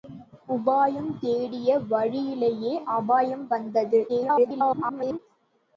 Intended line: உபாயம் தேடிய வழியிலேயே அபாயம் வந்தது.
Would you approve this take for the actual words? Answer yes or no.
no